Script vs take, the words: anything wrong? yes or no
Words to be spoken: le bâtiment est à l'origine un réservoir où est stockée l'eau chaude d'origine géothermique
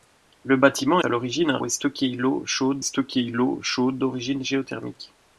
yes